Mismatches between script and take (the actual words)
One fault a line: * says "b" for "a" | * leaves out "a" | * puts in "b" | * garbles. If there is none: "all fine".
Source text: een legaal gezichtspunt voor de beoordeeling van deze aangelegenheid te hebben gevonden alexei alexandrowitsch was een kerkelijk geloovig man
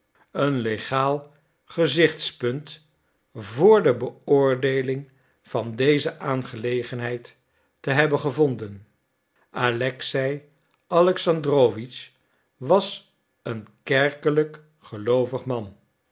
all fine